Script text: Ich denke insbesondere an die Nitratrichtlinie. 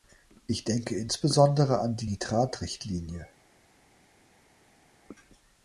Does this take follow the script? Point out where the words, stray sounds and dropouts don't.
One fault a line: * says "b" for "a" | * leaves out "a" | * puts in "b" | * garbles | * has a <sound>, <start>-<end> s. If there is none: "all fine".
all fine